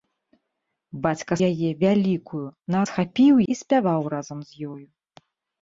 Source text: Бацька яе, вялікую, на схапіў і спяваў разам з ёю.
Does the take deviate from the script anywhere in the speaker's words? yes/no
no